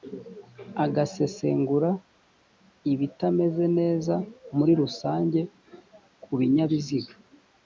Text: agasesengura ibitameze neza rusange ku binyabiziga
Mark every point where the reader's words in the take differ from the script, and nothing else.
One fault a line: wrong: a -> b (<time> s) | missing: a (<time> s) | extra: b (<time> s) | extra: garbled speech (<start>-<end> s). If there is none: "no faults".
extra: muri (4.6 s)